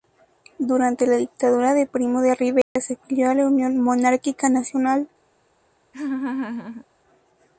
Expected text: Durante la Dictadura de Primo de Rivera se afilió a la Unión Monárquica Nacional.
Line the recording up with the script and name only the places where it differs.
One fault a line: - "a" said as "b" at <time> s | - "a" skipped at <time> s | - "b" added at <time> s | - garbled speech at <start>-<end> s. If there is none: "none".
none